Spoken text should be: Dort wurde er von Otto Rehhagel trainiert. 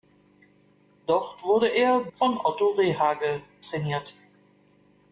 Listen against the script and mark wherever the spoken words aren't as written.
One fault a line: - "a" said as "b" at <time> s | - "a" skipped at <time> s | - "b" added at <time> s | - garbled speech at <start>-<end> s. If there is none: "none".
none